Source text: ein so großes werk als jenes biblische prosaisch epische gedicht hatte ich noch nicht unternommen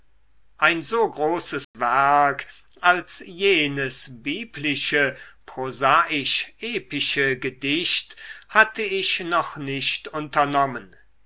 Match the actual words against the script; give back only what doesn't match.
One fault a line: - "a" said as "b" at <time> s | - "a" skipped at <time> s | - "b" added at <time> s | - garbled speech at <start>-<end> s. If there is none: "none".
none